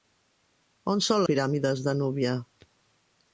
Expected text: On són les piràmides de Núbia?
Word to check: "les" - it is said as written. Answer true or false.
false